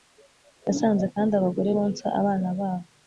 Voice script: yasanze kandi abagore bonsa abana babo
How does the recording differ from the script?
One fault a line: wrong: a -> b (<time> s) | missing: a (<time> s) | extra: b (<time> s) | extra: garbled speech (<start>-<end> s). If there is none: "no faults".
no faults